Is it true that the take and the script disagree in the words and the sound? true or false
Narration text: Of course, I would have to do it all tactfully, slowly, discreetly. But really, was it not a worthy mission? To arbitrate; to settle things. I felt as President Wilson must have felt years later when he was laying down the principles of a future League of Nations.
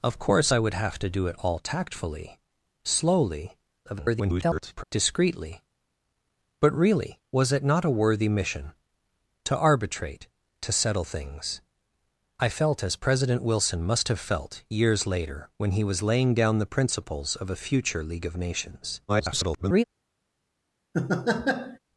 true